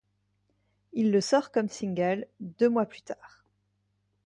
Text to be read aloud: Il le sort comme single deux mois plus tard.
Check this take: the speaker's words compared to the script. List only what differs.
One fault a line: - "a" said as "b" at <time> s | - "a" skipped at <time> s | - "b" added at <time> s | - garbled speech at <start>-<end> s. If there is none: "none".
none